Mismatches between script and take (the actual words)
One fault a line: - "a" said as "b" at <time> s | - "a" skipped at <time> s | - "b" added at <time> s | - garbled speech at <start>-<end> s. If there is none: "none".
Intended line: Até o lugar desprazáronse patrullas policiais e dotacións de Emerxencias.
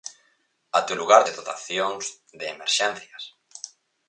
- "desprazáronse patrullas policiais" skipped at 1.2 s